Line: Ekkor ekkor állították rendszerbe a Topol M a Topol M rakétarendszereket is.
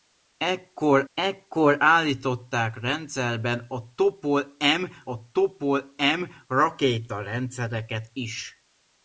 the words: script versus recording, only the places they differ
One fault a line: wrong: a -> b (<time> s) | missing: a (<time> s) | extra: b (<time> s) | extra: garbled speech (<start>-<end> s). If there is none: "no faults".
no faults